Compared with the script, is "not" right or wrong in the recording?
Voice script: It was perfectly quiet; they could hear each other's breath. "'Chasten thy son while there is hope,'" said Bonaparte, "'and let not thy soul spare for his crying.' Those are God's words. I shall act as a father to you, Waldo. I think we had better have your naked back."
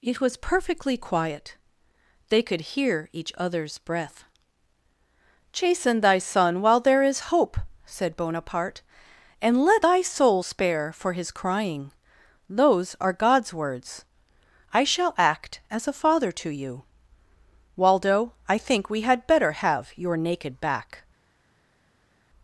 wrong